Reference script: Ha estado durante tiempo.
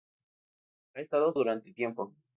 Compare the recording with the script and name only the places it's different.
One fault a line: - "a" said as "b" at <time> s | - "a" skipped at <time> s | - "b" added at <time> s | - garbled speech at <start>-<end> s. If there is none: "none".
none